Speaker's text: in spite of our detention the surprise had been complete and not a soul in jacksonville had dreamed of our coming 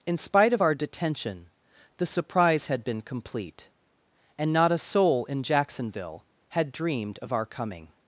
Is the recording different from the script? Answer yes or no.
no